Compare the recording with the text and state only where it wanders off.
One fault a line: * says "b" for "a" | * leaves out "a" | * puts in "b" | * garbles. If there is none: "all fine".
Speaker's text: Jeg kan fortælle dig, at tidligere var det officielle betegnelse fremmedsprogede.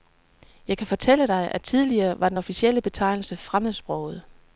* says "den" for "det"